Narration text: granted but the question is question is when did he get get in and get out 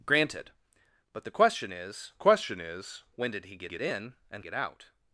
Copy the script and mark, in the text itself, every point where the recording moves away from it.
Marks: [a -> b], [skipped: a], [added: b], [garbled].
granted but the question is question is when did he get get in and get out